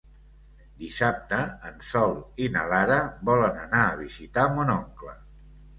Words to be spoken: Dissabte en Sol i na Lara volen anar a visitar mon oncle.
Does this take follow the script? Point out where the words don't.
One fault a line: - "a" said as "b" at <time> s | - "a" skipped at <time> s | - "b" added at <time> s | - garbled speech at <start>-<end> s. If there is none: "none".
none